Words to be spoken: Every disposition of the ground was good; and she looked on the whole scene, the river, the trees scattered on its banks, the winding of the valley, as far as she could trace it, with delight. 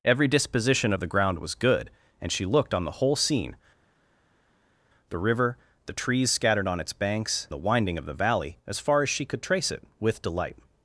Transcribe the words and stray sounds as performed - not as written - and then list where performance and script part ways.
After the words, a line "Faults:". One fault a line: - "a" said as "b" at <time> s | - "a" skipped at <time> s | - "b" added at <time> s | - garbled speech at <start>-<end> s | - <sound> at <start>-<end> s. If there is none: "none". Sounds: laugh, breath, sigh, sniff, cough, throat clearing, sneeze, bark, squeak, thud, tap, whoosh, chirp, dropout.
Every disposition of the ground was good; and she looked on the whole scene, the river, the trees scattered on its banks, the winding of the valley, as far as she could trace it, with delight.
Faults:
none